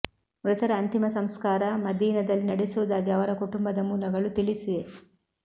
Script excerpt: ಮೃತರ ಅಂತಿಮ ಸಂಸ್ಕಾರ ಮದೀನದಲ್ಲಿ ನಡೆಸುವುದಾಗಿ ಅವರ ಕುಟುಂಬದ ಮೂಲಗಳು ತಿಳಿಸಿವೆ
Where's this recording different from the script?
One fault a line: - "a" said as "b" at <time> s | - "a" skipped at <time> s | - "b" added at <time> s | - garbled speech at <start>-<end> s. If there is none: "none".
none